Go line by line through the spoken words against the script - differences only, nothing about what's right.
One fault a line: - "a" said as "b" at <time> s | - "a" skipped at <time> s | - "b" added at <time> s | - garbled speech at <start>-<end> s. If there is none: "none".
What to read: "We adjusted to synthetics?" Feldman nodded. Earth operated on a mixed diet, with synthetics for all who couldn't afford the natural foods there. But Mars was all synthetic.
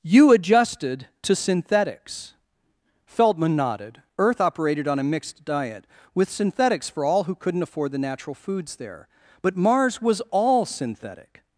- "We" said as "You" at 0.0 s